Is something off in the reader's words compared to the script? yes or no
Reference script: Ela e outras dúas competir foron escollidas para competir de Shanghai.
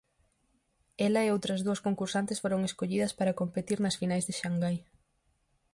yes